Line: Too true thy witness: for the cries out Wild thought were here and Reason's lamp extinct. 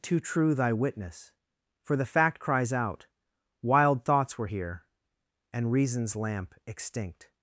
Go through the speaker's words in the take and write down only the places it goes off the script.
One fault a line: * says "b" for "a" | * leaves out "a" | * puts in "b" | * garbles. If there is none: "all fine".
* puts in "fact"
* says "thoughts" for "thought"